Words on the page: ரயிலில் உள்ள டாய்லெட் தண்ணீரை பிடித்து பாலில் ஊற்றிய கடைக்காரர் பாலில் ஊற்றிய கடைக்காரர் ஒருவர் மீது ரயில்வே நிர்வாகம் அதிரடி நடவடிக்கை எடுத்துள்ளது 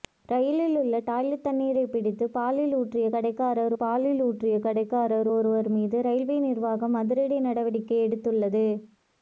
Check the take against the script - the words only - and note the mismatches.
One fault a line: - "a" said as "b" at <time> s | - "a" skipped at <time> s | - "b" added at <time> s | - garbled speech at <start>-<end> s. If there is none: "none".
none